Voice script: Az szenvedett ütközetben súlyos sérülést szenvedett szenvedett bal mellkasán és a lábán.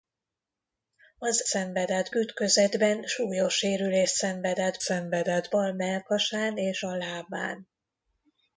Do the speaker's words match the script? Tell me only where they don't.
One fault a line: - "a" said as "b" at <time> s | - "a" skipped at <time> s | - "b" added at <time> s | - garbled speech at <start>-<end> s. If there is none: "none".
none